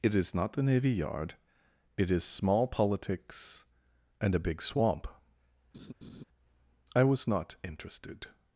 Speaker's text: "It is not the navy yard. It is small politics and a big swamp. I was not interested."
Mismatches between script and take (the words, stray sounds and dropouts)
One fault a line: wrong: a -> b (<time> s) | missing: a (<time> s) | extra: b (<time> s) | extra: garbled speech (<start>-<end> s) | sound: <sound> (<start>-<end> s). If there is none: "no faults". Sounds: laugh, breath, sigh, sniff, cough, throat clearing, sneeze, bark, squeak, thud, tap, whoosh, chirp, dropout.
sound: laugh (5.7-6.2 s)